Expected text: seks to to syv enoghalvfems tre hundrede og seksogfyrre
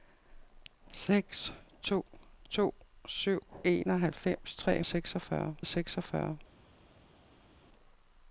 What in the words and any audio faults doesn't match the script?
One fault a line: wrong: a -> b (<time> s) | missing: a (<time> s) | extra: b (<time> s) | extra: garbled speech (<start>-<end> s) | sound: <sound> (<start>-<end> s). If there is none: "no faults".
wrong: hundrede -> seksogfyrre (4.8 s)